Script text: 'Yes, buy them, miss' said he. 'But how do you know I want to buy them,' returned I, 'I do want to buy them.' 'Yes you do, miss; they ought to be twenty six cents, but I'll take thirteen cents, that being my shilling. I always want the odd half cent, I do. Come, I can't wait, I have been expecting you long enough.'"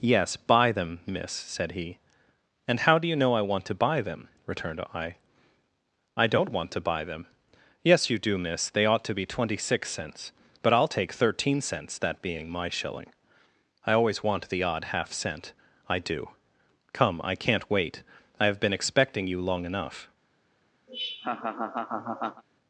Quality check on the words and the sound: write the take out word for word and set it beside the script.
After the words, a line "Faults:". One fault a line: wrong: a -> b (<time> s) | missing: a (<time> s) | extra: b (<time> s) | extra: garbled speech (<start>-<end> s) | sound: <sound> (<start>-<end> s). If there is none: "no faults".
'Yes, buy them, miss' said he. 'And how do you know I want to buy them,' returned I, 'I don't want to buy them.' 'Yes you do, miss; they ought to be twenty six cents, but I'll take thirteen cents, that being my shilling. I always want the odd half cent, I do. Come, I can't wait, I have been expecting you long enough.'"
Faults:
wrong: But -> And (2.7 s)
wrong: do -> don't (6.3 s)
sound: laugh (20.9-22.4 s)